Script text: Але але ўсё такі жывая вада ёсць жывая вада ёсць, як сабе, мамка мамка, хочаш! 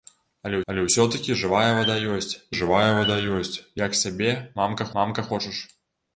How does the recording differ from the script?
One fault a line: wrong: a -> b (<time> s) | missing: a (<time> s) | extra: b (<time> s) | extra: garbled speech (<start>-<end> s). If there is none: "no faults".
no faults